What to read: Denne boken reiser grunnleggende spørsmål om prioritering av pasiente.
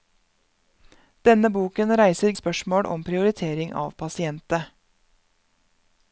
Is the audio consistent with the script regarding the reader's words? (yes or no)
no